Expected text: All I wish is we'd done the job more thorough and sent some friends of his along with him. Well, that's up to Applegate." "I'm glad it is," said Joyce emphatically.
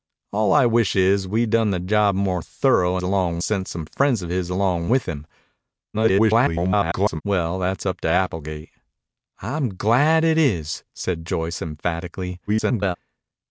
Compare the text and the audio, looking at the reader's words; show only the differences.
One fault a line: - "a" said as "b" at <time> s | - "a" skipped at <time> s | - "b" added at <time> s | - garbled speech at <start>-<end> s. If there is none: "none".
- "and" said as "along" at 3.0 s
- garbled speech at 5.9-7.2 s
- garbled speech at 12.5-13.0 s